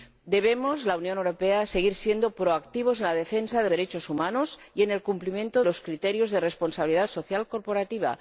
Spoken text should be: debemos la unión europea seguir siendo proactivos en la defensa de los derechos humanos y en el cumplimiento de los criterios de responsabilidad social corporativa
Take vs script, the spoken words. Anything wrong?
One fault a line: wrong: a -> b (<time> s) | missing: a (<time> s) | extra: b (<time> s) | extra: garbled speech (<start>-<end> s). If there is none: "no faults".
missing: los (3.7 s)
missing: de (5.6 s)